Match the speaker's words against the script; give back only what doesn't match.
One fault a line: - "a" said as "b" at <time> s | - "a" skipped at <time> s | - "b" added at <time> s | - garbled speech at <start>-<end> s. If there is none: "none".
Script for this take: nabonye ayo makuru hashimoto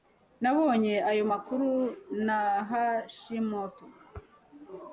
- "na" added at 2.2 s